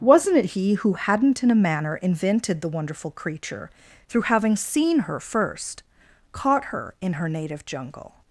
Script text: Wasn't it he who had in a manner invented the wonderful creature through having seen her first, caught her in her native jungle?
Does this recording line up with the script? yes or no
no